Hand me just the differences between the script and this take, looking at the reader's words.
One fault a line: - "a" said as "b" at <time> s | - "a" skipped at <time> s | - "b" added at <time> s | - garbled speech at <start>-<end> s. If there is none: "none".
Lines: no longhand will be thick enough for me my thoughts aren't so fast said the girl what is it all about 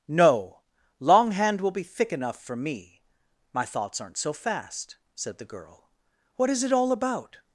none